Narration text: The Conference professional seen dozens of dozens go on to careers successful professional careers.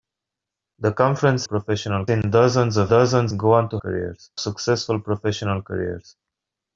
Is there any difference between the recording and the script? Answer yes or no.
no